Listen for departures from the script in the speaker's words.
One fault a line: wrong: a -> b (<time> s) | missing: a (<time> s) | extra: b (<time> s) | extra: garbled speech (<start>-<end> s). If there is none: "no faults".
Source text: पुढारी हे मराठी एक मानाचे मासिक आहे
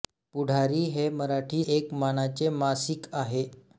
no faults